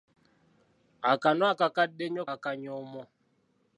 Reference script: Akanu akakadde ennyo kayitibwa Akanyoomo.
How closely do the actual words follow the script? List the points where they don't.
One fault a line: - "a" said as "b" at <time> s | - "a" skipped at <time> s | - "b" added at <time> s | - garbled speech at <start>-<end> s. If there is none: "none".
- "kayitibwa" skipped at 2.2 s